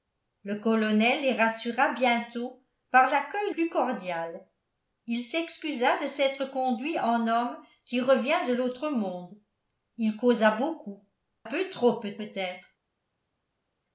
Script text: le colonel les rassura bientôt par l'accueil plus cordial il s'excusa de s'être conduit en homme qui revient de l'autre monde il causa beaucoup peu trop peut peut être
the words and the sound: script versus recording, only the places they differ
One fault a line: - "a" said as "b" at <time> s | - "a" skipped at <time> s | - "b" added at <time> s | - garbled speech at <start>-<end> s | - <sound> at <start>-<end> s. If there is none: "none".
none